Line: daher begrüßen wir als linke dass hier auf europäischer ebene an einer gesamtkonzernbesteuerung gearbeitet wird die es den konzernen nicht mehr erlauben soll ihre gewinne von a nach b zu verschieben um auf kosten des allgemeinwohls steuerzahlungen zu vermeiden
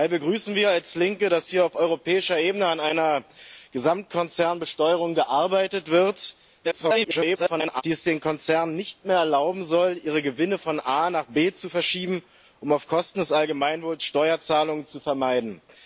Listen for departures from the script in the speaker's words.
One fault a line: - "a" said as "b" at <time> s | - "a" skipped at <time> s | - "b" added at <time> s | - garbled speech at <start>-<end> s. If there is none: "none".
- garbled speech at 6.6-7.8 s